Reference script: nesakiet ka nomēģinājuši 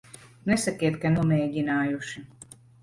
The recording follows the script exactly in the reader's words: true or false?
true